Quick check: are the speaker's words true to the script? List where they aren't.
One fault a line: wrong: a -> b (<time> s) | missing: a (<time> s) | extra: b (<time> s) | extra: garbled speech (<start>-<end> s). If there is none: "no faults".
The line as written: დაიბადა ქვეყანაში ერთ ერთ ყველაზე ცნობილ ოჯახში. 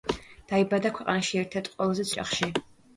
missing: ცნობილ (2.1 s)